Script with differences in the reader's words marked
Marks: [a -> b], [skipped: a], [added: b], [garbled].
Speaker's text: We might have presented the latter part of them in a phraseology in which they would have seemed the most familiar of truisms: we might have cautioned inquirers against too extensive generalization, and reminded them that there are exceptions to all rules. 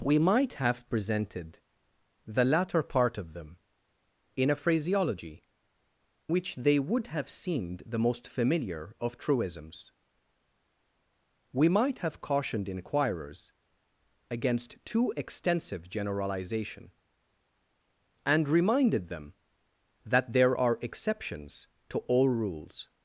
We might have presented the latter part of them in a phraseology [skipped: in] which they would have seemed the most familiar of truisms: we might have cautioned inquirers against too extensive generalization, and reminded them that there are exceptions to all rules.